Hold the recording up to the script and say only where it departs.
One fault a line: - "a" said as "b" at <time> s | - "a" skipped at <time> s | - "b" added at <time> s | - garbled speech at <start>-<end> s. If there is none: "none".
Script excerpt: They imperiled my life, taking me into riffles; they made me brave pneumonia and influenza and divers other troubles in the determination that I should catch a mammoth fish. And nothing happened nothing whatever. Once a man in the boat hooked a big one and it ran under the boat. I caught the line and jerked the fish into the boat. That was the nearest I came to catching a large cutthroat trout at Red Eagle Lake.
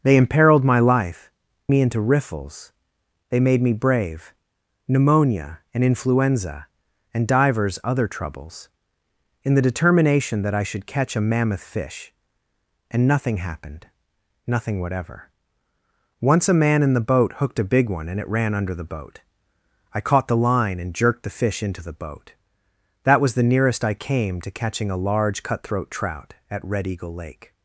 - "taking" skipped at 1.3 s